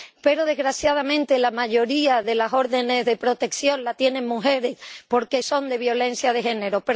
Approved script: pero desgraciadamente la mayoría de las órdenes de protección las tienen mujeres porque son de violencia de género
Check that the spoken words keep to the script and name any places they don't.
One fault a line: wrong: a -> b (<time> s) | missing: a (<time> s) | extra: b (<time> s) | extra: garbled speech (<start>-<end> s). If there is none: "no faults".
no faults